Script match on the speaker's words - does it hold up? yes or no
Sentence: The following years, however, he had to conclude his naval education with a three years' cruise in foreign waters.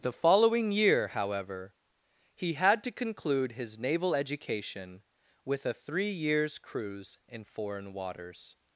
no